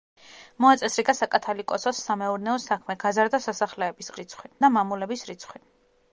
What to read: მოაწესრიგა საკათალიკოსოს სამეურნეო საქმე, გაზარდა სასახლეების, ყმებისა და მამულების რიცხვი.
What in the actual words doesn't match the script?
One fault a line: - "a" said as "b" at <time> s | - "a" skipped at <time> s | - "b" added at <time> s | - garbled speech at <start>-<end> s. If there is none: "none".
- "ყმებისა" said as "რიცხვი" at 4.2 s